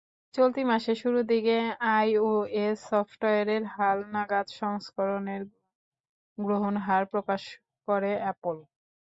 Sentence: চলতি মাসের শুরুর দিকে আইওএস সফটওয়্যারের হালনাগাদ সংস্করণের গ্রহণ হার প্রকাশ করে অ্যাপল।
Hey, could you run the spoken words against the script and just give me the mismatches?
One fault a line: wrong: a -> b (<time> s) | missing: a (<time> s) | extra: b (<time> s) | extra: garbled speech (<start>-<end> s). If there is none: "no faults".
no faults